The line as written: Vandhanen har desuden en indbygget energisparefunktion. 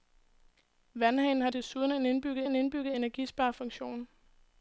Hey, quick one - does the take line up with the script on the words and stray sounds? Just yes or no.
no